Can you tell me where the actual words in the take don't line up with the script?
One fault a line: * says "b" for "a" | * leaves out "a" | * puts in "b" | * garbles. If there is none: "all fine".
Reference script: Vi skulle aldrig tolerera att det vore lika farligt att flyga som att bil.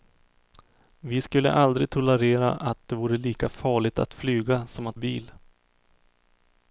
all fine